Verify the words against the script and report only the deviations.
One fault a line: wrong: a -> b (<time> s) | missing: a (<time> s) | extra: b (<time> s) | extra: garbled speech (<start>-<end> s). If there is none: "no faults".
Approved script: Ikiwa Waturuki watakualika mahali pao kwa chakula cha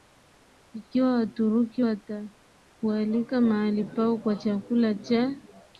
no faults